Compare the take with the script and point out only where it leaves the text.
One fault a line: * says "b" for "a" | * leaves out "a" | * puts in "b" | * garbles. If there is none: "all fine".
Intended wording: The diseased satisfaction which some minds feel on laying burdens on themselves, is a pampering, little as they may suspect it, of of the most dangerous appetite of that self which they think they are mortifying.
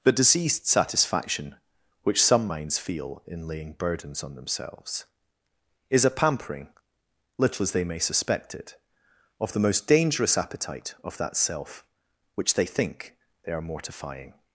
* says "in" for "on"
* leaves out "of"